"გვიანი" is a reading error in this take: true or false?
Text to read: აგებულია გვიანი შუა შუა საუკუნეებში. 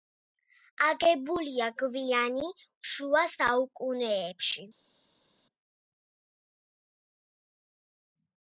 false